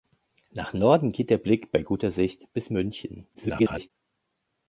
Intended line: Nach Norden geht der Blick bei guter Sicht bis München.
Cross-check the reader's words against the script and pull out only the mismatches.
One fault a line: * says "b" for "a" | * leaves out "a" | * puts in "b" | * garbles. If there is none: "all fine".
* garbles